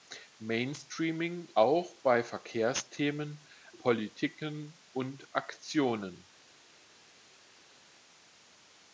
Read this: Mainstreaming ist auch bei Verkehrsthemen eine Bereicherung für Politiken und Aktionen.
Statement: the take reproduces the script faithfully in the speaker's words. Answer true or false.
false